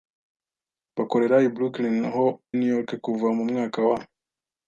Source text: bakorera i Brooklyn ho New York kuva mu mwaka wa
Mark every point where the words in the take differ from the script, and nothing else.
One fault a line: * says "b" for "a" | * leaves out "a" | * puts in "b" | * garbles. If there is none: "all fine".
all fine